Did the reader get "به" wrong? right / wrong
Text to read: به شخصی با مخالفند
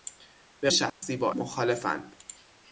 right